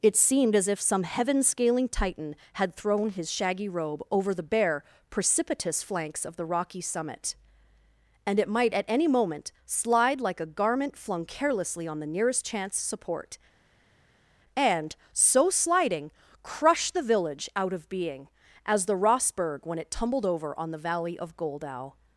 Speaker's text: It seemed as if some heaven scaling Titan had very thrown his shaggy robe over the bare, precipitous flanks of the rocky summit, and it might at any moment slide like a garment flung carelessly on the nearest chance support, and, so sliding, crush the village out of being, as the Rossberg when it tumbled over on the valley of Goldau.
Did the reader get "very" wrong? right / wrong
wrong